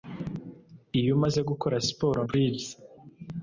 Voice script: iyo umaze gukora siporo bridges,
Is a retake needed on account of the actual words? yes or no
no